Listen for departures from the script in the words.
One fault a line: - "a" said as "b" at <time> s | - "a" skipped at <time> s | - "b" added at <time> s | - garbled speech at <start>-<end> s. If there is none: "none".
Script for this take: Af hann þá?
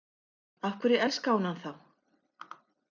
- "hverju elskaði hún" added at 0.8 s